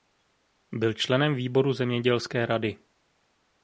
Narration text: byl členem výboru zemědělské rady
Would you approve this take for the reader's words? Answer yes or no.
yes